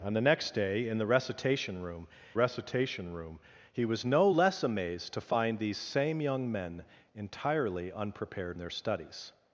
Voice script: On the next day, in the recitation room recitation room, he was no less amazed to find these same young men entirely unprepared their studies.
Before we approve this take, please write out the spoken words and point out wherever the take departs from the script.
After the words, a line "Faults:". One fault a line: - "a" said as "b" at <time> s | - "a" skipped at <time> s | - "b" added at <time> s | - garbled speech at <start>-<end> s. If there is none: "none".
On the next day, in the recitation room recitation room, he was no less amazed to find these same young men entirely unprepared their studies.
Faults:
none